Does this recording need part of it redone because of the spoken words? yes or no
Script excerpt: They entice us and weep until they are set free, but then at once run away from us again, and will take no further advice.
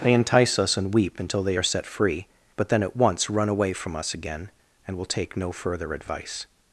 no